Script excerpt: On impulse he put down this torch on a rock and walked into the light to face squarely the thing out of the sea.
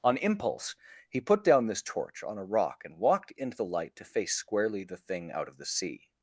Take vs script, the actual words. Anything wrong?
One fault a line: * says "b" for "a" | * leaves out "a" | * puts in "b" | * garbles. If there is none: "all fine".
all fine